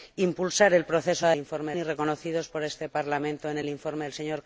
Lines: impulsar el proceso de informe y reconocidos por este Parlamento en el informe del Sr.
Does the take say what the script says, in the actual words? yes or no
yes